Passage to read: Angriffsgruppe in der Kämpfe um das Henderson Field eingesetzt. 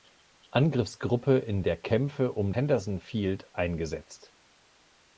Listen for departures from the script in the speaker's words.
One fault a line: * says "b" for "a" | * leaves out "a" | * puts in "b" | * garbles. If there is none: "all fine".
* leaves out "das"